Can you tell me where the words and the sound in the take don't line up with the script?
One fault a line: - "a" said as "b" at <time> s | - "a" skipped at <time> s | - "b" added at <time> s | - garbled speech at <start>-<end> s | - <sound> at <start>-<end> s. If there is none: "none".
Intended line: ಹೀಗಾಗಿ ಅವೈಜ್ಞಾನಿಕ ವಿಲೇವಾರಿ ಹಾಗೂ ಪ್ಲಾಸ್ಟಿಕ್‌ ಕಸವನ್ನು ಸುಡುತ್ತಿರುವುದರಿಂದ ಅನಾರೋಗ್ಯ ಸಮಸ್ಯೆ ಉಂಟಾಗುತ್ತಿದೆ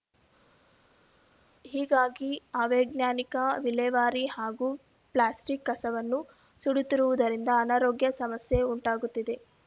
none